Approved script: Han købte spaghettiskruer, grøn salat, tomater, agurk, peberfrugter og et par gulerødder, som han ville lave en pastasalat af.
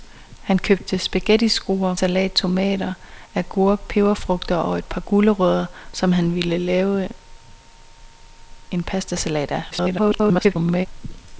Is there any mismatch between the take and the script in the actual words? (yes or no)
yes